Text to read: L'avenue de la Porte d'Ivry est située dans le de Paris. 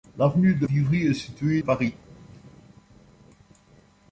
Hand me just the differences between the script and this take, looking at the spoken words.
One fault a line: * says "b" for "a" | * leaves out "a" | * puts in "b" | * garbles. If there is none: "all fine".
* leaves out "la Porte"
* leaves out "dans le de"